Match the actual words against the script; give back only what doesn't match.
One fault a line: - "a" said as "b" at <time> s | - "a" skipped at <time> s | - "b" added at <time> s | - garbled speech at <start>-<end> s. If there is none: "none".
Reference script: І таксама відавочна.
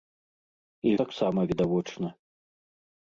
none